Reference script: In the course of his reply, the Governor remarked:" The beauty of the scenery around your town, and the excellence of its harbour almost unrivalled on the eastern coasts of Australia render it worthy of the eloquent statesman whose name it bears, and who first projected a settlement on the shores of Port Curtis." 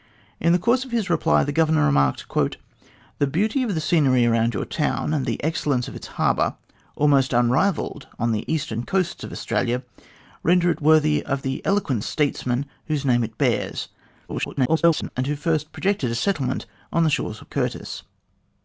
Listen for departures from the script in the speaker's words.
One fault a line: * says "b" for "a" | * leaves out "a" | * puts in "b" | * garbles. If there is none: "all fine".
* garbles
* leaves out "Port"